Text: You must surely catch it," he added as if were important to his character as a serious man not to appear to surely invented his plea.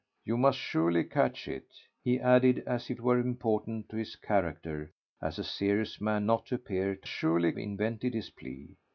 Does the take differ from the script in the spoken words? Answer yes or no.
no